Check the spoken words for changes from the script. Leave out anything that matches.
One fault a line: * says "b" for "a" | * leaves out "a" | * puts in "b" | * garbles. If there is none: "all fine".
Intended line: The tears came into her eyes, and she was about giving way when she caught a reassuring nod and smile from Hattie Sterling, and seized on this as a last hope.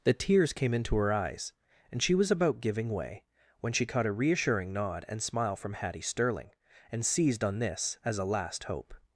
all fine